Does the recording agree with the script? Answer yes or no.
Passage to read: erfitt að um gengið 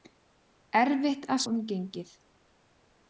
yes